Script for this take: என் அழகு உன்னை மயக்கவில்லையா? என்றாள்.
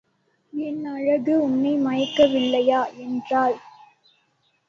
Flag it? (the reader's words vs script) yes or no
no